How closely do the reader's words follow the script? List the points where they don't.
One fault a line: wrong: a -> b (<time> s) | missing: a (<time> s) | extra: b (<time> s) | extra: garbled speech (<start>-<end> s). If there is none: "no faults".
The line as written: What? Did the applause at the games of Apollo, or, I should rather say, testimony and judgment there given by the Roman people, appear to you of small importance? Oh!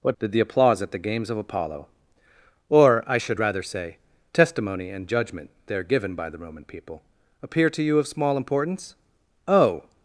no faults